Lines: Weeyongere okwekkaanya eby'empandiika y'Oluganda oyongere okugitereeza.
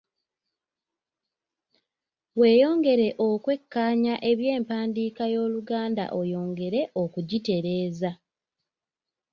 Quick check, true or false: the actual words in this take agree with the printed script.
true